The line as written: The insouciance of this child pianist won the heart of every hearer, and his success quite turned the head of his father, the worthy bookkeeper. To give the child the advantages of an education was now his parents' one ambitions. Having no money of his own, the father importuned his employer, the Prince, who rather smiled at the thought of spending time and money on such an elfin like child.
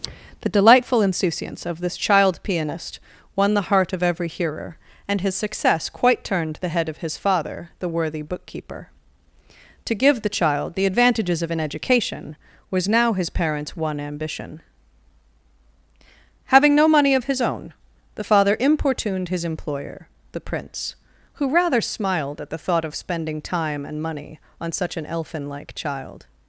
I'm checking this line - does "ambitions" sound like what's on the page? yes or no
no